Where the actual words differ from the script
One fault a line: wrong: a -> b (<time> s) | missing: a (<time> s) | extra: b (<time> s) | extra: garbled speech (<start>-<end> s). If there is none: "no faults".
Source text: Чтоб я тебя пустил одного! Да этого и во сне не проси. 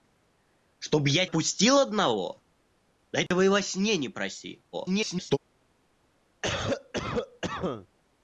missing: тебя (1.2 s)
extra: garbled speech (4.7-5.4 s)